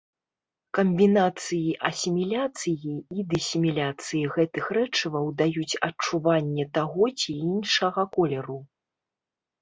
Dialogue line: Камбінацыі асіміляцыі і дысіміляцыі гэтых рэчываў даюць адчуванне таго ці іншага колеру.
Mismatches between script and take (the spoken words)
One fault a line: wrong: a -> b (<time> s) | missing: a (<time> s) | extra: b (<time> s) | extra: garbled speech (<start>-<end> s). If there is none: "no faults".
no faults